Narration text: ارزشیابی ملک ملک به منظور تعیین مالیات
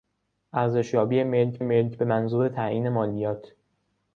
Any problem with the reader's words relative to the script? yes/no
no